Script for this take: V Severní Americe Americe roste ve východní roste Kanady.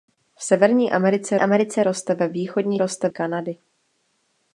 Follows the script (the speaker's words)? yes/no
yes